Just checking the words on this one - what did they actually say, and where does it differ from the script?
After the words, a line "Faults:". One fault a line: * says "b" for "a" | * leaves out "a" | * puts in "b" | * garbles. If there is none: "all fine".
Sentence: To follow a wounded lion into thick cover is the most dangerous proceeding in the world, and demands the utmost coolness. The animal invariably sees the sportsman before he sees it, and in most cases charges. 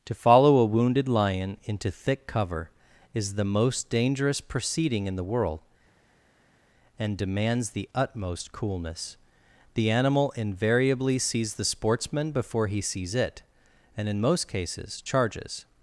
To follow a wounded lion into thick cover is the most dangerous proceeding in the world, and demands the utmost coolness. The animal invariably sees the sportsman before he sees it, and in most cases charges.
Faults:
all fine